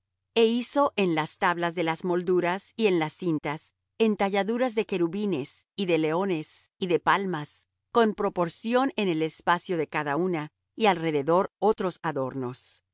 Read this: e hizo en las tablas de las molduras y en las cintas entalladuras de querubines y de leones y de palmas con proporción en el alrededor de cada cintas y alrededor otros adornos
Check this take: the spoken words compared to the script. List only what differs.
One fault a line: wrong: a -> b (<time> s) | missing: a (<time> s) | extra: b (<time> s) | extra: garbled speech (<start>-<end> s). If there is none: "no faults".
wrong: alrededor -> espacio (9.2 s)
wrong: cintas -> una (10.1 s)